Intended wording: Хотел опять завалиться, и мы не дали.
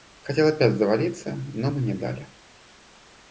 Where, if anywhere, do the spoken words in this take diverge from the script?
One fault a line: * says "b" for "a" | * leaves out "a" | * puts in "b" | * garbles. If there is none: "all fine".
* says "но" for "и"